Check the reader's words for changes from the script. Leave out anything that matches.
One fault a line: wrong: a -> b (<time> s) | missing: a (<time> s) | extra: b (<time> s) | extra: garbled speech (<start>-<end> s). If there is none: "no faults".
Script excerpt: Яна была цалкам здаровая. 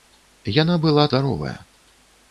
missing: цалкам (1.1 s)